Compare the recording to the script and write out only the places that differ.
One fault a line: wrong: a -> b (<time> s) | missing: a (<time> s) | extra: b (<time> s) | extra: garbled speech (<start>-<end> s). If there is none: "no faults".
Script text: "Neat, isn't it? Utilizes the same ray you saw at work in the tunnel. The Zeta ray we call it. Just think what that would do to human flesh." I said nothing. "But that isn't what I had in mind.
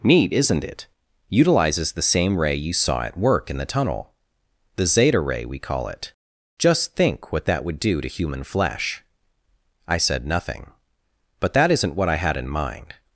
no faults